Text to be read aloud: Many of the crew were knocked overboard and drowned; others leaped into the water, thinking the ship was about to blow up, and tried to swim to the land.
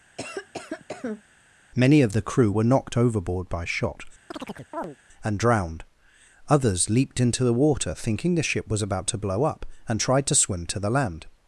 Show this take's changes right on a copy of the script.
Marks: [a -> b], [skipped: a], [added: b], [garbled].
Many of the crew were knocked overboard [added: by shot] and drowned; others leaped into the water, thinking the ship was about to blow up, and tried to swim to the land.